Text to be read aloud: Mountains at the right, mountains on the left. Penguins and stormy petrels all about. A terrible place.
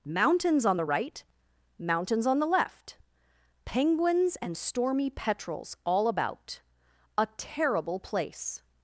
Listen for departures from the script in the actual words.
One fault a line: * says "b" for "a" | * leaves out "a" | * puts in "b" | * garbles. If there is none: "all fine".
* says "on" for "at"